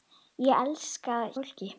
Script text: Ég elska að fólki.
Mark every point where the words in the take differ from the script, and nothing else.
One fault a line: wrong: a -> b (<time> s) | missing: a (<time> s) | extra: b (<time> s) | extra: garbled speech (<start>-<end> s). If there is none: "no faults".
no faults